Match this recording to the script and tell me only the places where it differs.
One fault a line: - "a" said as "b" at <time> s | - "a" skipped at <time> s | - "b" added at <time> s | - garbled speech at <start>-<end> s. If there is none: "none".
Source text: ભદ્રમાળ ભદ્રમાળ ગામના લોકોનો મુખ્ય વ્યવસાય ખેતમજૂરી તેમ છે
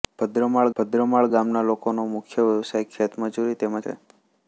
none